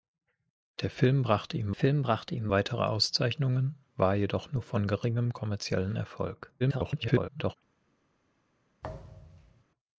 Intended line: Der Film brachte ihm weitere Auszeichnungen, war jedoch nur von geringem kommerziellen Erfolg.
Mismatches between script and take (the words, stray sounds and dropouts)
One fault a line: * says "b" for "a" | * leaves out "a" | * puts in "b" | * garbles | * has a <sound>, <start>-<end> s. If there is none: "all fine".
* puts in "Film brachte ihm"
* garbles
* has a thud, 8.8-9.6 s